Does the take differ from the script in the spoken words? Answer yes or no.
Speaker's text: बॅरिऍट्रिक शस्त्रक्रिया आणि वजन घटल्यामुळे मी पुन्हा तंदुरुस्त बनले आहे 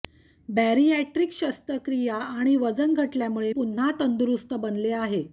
yes